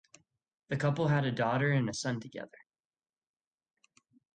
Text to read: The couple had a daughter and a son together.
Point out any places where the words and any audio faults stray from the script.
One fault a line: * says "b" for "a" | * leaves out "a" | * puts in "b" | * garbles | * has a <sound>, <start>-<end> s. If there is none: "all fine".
all fine